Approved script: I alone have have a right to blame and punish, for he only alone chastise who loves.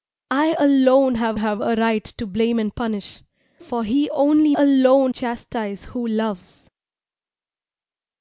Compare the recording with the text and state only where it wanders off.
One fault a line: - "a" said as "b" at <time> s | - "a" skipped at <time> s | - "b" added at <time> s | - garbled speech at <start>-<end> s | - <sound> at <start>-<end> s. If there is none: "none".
none